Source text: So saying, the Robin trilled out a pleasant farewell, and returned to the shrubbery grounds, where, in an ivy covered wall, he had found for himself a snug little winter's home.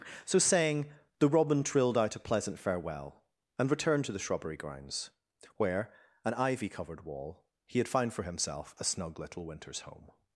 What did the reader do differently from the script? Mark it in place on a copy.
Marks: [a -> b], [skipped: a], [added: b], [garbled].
So saying, the Robin trilled out a pleasant farewell, and returned to the shrubbery grounds, where, [skipped: in] an ivy covered wall, he had found for himself a snug little winter's home.